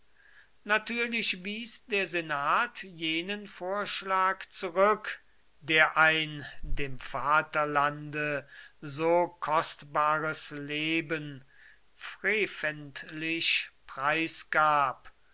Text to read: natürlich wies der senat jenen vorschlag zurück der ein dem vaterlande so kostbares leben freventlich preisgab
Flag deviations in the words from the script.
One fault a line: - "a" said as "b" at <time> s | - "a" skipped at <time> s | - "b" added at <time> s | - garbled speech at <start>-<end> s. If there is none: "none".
none